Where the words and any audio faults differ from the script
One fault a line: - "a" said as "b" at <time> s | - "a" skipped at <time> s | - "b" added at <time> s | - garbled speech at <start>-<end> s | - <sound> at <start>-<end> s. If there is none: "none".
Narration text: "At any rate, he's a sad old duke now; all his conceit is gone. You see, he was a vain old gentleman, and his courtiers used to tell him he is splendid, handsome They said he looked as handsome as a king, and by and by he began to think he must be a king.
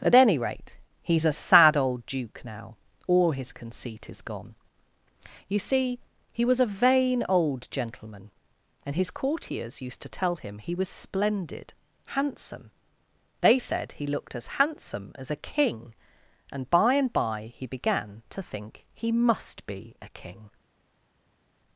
- "is" said as "was" at 10.7 s